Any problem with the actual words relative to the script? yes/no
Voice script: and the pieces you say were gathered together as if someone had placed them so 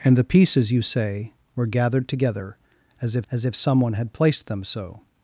yes